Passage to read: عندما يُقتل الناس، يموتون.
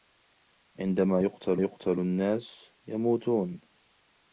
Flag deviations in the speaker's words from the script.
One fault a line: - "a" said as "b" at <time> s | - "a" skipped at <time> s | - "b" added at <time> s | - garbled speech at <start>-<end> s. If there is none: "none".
- "يُقتل" added at 1.6 s